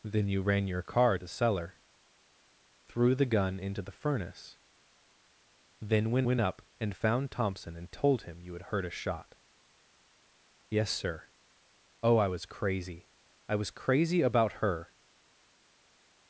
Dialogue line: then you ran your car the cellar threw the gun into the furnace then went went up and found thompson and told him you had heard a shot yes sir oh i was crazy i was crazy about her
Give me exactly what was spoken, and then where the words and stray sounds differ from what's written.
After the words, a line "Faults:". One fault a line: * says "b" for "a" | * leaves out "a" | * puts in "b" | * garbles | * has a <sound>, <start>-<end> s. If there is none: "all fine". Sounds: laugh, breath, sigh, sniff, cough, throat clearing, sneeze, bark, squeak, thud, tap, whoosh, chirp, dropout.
then you ran your car the cellar threw the gun into the furnace then went went up and found thompson and told him you had heard a shot yes sir oh i was crazy i was crazy about her
Faults:
all fine